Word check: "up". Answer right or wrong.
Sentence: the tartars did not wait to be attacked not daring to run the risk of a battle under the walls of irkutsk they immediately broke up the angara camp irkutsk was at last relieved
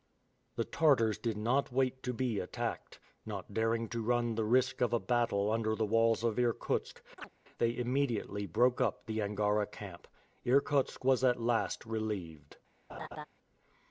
right